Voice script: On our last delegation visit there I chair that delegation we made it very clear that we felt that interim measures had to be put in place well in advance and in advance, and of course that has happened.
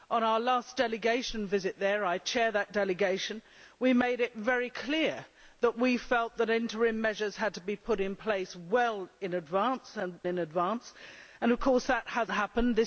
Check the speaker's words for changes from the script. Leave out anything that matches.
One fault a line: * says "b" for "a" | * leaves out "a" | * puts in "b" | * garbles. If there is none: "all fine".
all fine